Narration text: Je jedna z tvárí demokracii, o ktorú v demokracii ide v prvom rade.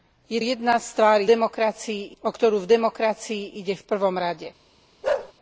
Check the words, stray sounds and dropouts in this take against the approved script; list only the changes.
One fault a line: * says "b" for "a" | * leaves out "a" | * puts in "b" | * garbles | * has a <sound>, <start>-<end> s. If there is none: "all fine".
* has a bark, 5.0-5.3 s